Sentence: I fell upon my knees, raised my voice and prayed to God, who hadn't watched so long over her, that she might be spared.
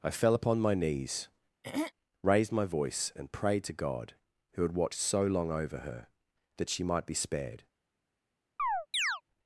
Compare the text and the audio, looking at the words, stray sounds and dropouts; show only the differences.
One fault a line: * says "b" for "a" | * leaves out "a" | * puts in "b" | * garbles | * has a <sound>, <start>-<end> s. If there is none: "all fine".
* has a throat clearing, 1.6-1.9 s
* says "had" for "hadn't"
* has a chirp, 8.6-9.2 s